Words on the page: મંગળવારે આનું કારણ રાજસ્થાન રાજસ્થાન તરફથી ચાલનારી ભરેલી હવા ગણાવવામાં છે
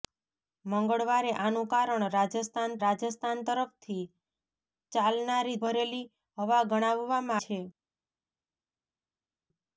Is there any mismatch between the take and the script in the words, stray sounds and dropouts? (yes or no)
no